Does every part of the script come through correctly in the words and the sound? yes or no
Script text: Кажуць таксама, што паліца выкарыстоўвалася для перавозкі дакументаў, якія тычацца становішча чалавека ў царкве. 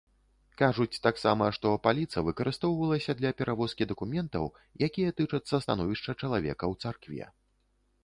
yes